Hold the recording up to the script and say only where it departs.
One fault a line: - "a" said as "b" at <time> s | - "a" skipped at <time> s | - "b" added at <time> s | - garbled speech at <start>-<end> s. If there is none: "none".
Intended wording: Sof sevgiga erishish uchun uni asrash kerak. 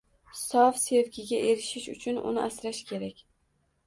none